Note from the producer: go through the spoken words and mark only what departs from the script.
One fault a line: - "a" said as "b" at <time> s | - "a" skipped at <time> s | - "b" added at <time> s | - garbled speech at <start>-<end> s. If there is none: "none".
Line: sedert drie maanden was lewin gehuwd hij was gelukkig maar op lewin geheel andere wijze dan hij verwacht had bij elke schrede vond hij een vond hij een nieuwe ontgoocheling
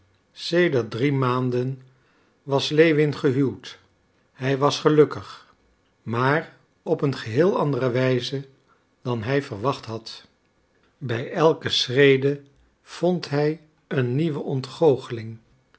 - "lewin" said as "een" at 7.0 s
- "vond hij een" skipped at 14.2 s